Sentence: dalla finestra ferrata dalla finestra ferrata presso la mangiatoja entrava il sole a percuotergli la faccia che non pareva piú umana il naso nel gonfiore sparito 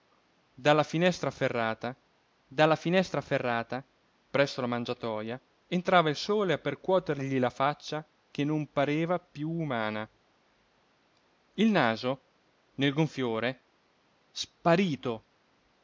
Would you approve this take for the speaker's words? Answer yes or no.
yes